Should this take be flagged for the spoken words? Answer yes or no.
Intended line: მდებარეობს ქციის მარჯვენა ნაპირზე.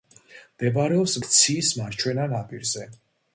no